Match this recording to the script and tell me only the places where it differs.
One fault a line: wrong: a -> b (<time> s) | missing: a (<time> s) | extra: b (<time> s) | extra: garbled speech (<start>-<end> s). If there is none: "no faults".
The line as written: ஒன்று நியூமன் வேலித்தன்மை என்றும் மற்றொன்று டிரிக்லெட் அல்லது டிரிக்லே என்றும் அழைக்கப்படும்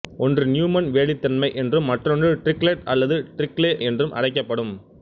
no faults